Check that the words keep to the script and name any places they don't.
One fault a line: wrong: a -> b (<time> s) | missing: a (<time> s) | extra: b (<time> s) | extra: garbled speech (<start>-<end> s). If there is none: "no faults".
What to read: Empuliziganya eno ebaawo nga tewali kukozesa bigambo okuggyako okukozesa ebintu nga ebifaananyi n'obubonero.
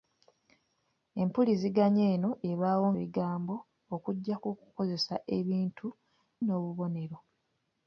missing: nga tewali kukozesa (2.9 s)
missing: nga ebifaananyi (5.9 s)